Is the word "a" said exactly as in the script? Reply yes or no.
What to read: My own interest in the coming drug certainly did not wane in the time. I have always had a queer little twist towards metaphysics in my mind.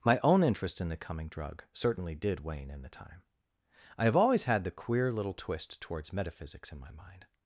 no